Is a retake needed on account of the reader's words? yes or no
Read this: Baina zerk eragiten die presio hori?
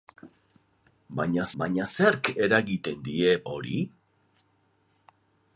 yes